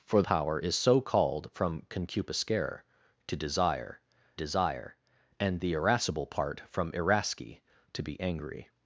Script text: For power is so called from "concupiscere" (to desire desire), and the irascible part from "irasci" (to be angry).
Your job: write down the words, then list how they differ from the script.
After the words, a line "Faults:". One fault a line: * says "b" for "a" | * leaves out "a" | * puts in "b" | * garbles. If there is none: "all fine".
For power is so called from "concupiscere" (to desire desire), and the irascible part from "irasci" (to be angry).
Faults:
all fine